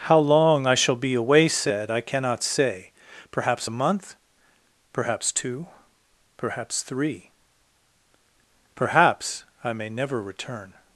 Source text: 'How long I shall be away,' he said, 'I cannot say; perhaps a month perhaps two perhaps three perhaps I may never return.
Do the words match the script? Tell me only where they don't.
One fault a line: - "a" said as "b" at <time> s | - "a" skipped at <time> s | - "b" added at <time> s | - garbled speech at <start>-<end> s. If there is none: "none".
- "he" skipped at 1.5 s